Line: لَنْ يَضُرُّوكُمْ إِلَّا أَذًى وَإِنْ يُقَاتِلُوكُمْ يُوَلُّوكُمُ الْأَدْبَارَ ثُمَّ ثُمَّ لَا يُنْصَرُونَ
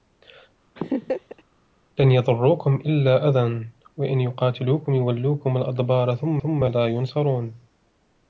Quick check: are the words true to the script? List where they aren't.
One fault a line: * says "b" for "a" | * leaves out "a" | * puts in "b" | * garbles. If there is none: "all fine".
all fine